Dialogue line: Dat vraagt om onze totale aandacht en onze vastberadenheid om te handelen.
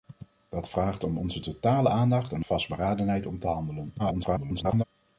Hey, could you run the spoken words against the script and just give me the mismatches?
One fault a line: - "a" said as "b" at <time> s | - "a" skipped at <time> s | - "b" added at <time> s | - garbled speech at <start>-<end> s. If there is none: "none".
- "onze" skipped at 2.4 s
- garbled speech at 4.0-4.8 s